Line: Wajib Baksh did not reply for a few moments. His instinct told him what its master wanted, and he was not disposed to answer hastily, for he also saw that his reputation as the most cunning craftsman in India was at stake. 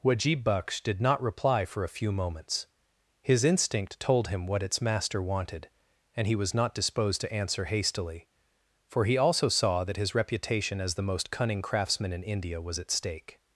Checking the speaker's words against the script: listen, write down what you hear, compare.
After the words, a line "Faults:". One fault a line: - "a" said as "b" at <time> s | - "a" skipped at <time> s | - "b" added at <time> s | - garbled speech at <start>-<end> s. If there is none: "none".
Wajib Baksh did not reply for a few moments. His instinct told him what its master wanted, and he was not disposed to answer hastily, for he also saw that his reputation as the most cunning craftsman in India was at stake.
Faults:
none